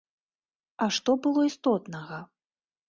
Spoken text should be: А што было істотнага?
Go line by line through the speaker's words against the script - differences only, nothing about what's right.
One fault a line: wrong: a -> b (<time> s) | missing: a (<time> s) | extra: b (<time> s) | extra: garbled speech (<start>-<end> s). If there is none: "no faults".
no faults